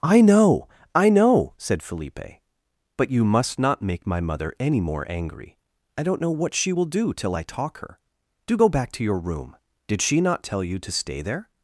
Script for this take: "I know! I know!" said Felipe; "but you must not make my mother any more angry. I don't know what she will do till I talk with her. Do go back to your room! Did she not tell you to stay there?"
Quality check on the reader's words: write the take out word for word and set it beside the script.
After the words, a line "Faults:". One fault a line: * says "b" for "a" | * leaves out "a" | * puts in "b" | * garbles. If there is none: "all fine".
"I know! I know!" said Felipe; "but you must not make my mother any more angry. I don't know what she will do till I talk her. Do go back to your room! Did she not tell you to stay there?"
Faults:
* leaves out "with"